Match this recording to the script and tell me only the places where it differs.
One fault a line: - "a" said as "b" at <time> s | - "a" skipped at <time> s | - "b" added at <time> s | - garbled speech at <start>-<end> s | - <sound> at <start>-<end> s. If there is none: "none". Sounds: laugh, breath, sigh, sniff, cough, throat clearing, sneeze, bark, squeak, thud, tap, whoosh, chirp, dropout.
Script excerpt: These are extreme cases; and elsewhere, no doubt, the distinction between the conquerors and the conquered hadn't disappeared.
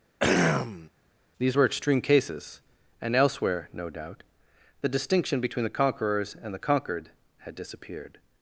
- throat clearing at 0.2-0.9 s
- "are" said as "were" at 1.5 s
- "hadn't" said as "had" at 7.4 s